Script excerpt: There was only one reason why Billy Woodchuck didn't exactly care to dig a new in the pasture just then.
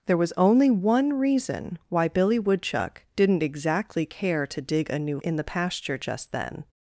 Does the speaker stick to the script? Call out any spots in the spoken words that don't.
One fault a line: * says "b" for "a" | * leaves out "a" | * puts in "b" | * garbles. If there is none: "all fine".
all fine